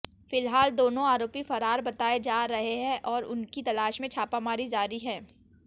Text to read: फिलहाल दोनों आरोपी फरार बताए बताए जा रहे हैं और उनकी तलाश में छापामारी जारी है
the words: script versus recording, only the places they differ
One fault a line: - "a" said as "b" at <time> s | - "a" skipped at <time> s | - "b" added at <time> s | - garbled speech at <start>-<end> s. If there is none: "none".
- "बताए" skipped at 2.2 s